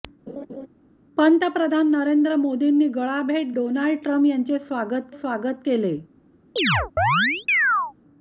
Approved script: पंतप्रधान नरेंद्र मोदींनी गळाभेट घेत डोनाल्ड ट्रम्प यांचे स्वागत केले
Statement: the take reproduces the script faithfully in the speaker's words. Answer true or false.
false